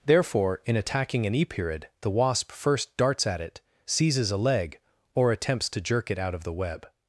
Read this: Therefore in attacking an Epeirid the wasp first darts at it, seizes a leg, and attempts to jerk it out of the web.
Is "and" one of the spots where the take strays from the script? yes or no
yes